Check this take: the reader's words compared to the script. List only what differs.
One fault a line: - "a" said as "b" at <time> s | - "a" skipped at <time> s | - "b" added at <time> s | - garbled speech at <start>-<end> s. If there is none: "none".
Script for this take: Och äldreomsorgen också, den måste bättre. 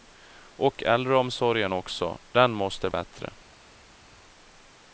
none